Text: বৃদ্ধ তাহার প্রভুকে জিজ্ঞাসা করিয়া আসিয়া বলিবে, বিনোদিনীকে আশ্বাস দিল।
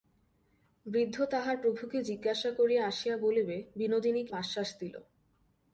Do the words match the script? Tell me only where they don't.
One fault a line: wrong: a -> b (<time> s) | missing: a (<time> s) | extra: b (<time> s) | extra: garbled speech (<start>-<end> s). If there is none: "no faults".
no faults